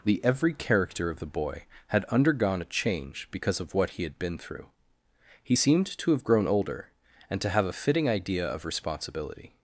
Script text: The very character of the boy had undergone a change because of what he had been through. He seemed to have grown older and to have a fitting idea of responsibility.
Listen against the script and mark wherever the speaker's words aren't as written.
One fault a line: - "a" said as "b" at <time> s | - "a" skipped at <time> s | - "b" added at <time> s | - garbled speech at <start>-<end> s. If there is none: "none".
- "very" said as "every" at 0.2 s